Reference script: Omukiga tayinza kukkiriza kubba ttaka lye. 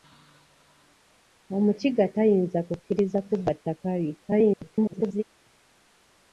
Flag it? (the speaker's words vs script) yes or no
yes